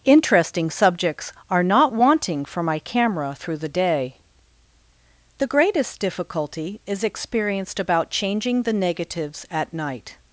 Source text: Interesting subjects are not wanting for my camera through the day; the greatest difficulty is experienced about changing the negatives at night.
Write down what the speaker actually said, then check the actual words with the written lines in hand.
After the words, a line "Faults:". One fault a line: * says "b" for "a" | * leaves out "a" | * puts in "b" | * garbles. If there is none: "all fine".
Interesting subjects are not wanting for my camera through the day; the greatest difficulty is experienced about changing the negatives at night.
Faults:
all fine